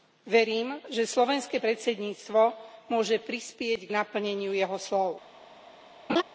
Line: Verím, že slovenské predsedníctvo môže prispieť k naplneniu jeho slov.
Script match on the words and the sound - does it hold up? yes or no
no